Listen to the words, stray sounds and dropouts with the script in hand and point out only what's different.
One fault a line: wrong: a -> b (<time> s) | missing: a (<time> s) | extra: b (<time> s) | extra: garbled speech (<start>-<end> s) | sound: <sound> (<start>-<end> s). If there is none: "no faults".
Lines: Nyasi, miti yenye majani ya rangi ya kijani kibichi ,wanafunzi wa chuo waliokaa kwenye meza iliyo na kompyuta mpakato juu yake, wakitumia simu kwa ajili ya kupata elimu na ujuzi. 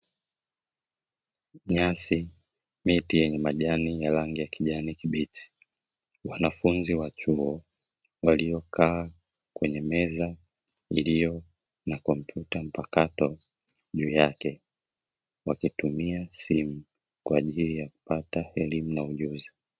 no faults